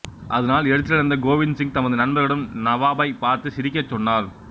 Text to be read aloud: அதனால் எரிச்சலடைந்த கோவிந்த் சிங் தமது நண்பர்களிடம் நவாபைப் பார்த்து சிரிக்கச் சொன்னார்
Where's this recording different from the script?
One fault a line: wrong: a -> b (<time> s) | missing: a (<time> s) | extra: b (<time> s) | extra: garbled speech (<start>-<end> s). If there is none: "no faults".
no faults